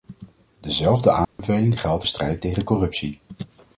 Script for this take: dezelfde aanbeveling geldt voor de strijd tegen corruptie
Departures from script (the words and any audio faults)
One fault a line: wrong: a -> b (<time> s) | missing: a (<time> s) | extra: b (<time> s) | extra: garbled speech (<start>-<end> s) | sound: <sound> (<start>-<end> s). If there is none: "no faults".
sound: dropout (1.2-1.4 s)
missing: voor (2.0 s)